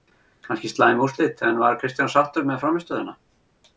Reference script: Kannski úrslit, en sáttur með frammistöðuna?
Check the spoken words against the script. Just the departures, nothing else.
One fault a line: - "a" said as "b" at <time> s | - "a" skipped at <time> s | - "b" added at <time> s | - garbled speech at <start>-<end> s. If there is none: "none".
- "slæm" added at 0.7 s
- "var Kristján" added at 1.6 s